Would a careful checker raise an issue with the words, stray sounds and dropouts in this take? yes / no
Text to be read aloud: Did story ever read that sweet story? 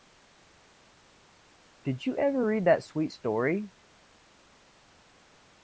yes